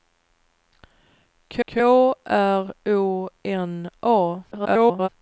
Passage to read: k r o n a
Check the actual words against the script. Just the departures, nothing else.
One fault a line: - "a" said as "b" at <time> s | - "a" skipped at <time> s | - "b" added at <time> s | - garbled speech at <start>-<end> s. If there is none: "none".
- "k" added at 1.7 s
- garbled speech at 4.5-5.1 s